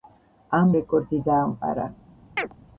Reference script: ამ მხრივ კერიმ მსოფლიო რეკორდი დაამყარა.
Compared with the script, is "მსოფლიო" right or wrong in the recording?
wrong